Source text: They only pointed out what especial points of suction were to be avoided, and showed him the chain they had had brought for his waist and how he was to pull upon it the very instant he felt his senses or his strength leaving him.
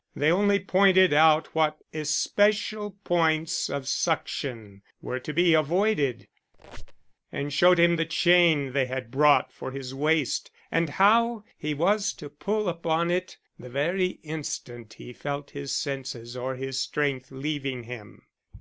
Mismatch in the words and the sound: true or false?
true